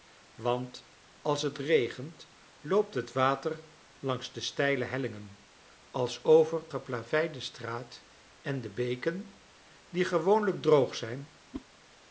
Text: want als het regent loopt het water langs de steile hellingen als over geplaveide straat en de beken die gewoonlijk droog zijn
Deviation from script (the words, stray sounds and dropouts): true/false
true